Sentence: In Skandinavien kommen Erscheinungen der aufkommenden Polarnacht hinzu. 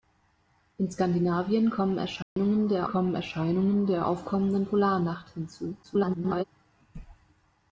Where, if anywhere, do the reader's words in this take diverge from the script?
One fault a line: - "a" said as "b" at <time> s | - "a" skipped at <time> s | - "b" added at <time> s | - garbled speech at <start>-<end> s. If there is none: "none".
- "kommen Erscheinungen der" added at 2.8 s
- garbled speech at 5.8-6.4 s